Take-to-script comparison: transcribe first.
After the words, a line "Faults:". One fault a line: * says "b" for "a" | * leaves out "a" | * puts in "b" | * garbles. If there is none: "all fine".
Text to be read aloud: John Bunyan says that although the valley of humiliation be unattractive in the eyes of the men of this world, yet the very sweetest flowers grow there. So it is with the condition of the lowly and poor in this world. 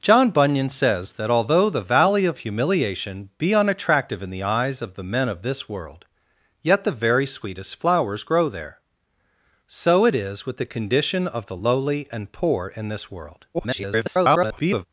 John Bunyan says that although the valley of humiliation be unattractive in the eyes of the men of this world, yet the very sweetest flowers grow there. So it is with the condition of the lowly and poor in this world. [garbled]
Faults:
* garbles